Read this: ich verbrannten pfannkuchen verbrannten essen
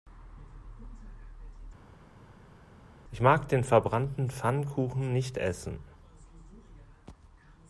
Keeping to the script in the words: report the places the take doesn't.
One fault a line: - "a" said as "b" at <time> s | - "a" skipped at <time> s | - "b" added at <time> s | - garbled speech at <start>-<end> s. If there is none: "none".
- "mag den" added at 3.2 s
- "verbrannten" said as "nicht" at 5.1 s